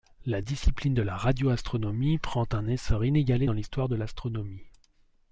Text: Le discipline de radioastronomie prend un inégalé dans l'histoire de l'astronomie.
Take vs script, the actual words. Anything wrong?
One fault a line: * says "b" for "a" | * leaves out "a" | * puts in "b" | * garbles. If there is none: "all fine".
* says "La" for "Le"
* puts in "la"
* puts in "essor"